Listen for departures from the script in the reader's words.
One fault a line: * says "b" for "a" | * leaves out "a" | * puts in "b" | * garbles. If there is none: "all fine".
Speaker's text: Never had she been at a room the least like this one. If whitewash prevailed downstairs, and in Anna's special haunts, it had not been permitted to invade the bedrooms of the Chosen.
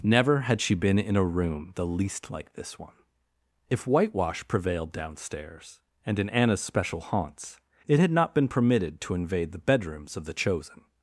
* says "in" for "at"